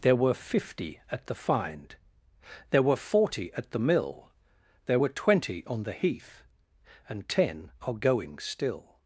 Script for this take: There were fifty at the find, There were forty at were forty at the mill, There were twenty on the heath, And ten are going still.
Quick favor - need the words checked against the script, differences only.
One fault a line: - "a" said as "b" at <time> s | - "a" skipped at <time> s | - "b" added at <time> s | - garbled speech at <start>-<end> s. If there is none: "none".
- "were forty at" skipped at 3.7 s